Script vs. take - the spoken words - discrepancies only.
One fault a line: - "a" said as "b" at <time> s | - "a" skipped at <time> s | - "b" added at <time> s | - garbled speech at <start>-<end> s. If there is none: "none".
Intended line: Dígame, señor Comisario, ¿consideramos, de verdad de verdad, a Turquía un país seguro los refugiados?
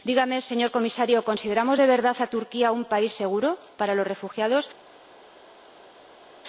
- "de verdad" skipped at 2.1 s
- "para" added at 3.8 s